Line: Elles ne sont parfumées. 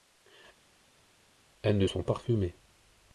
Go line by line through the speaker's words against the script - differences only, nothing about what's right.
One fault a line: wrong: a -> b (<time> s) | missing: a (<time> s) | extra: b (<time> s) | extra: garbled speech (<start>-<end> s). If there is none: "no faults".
no faults